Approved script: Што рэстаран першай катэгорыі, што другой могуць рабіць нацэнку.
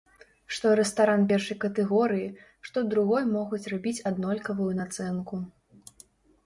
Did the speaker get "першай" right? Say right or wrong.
right